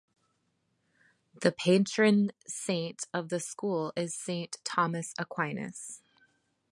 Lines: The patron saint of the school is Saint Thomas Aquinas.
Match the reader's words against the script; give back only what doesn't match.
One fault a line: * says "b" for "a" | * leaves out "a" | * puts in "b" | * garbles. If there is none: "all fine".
all fine